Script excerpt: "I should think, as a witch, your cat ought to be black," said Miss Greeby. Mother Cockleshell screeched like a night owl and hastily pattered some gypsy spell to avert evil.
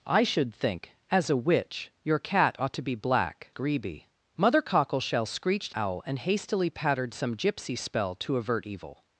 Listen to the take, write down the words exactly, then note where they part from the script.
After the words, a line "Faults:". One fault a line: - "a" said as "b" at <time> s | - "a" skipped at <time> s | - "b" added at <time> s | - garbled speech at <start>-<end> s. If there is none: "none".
"I should think, as a witch, your cat ought to be black," Greeby. Mother Cockleshell screeched owl and hastily pattered some gypsy spell to avert evil.
Faults:
- "said Miss" skipped at 3.5 s
- "like a night" skipped at 5.7 s